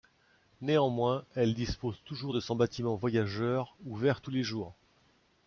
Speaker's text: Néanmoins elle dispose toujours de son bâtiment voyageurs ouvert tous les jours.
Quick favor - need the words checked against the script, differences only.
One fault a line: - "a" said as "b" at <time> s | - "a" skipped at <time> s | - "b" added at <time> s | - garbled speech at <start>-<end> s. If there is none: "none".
none